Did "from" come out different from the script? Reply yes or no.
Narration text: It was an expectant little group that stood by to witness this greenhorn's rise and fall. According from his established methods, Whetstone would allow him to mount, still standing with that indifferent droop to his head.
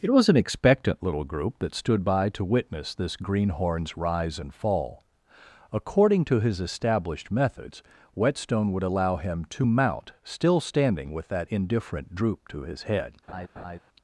yes